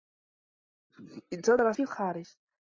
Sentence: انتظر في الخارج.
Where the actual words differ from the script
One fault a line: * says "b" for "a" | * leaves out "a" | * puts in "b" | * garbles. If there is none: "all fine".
all fine